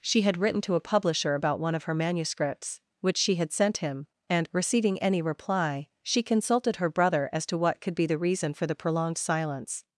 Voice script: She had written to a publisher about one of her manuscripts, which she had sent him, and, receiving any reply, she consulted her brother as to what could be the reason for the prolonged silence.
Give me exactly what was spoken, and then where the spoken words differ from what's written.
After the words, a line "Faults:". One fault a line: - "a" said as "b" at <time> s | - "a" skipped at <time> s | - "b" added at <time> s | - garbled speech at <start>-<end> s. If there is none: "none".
She had written to a publisher about one of her manuscripts, which she had sent him, and, receiving any reply, she consulted her brother as to what could be the reason for the prolonged silence.
Faults:
none